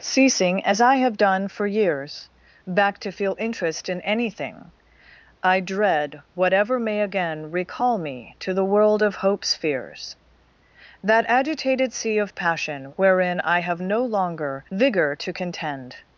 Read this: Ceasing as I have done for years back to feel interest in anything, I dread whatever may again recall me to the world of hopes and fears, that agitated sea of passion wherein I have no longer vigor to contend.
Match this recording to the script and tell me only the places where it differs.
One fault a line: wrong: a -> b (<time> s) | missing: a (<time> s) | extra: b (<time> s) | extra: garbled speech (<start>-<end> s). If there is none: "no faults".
missing: and (9.5 s)